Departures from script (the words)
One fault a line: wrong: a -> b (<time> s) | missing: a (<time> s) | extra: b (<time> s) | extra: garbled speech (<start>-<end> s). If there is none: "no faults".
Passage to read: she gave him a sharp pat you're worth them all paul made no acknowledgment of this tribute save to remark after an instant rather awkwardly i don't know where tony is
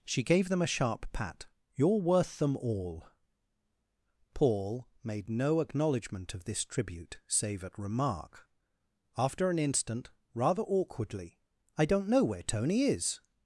wrong: him -> them (0.5 s)
wrong: to -> at (7.6 s)